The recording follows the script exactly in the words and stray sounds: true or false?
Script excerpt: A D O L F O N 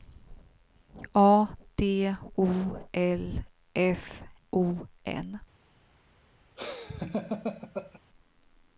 false